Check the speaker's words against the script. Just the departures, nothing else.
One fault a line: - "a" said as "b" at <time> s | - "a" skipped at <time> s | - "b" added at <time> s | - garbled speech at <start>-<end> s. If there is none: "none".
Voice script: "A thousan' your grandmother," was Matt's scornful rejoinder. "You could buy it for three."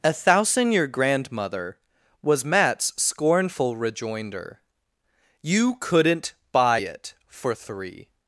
- "could" said as "couldn't" at 5.8 s